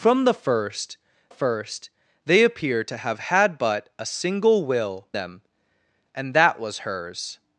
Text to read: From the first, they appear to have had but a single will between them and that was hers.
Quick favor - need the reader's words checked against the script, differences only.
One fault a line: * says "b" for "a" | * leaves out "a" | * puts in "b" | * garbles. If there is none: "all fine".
* puts in "first"
* leaves out "between"